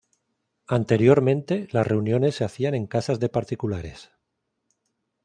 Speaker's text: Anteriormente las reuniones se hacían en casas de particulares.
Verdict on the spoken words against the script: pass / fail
pass